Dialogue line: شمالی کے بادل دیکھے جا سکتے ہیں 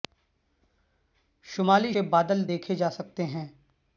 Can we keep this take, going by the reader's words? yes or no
yes